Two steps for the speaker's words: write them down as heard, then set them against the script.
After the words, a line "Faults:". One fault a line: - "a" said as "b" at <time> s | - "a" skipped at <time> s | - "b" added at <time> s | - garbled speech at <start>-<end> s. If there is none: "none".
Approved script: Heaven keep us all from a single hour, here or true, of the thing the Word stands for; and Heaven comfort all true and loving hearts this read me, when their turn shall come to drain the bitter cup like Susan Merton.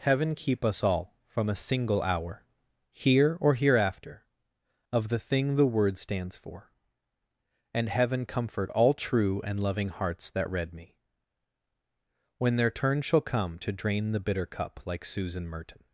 Heaven keep us all from a single hour, here or hereafter, of the thing the Word stands for; and Heaven comfort all true and loving hearts that read me, when their turn shall come to drain the bitter cup like Susan Merton.
Faults:
- "true" said as "hereafter" at 3.5 s
- "this" said as "that" at 10.3 s